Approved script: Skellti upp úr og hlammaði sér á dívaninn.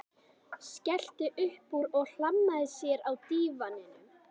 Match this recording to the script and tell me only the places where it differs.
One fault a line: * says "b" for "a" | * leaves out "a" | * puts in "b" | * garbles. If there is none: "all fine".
all fine